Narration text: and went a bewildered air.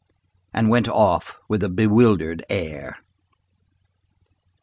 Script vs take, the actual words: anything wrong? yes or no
yes